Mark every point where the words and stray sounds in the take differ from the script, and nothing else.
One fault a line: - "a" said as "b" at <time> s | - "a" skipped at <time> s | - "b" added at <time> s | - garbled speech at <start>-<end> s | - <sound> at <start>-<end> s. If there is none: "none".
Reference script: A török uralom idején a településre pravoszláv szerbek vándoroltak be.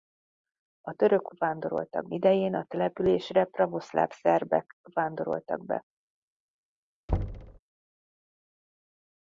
- "uralom" said as "vándoroltak" at 1.4 s
- thud at 7.1-7.6 s